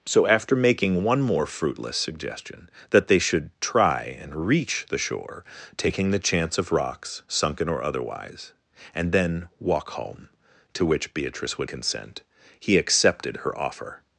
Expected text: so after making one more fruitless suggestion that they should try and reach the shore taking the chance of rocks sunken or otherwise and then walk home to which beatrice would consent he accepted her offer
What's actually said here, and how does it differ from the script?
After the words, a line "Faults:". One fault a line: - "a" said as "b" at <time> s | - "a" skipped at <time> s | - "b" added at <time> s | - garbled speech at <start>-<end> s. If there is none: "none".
so after making one more fruitless suggestion that they should try and reach the shore taking the chance of rocks sunken or otherwise and then walk home to which beatrice would consent he accepted her offer
Faults:
none